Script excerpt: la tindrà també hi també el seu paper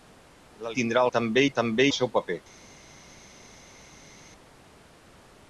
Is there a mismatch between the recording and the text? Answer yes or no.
no